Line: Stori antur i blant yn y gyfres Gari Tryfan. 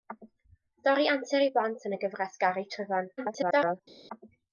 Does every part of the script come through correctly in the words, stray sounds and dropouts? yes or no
no